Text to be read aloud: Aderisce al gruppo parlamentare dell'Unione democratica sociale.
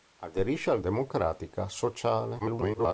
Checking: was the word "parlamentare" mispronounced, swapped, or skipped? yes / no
yes